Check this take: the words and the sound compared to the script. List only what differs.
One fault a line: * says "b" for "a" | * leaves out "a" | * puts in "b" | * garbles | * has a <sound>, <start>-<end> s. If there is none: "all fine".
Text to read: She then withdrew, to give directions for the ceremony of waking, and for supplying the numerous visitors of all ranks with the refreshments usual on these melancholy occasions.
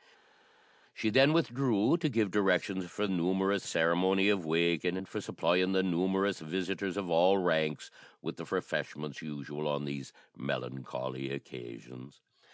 * says "numerous" for "the"